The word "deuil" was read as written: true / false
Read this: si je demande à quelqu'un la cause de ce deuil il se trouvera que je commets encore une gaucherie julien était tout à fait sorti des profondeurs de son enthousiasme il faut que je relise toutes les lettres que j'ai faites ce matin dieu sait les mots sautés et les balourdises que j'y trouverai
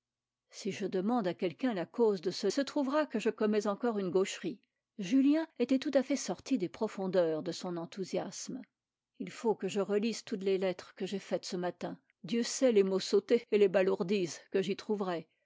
false